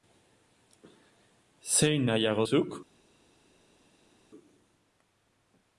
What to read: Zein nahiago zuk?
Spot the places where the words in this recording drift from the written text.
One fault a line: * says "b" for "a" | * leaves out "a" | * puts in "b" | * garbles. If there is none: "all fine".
all fine